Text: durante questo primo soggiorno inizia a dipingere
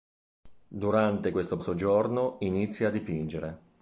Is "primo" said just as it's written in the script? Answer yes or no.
no